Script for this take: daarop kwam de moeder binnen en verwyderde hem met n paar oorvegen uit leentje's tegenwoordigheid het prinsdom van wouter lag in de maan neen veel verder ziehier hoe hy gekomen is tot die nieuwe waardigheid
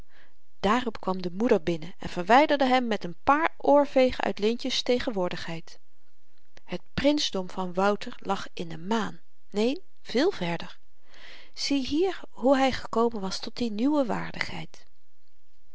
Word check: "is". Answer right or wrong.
wrong